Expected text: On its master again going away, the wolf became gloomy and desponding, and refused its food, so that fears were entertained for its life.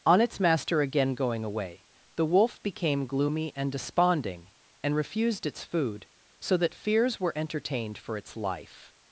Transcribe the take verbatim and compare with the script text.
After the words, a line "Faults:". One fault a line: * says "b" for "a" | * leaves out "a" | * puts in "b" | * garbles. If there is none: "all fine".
On its master again going away, the wolf became gloomy and desponding, and refused its food, so that fears were entertained for its life.
Faults:
all fine